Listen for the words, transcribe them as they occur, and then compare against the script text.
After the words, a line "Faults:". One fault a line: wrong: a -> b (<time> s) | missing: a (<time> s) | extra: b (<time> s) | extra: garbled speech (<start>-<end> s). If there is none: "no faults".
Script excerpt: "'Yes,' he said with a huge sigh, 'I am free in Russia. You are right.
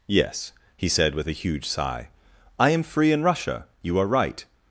"'Yes,' he said with a huge sigh, 'I am free in Russia. You are right.
Faults:
no faults